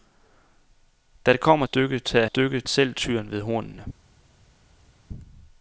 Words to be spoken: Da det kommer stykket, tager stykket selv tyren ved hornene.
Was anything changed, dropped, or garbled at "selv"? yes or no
no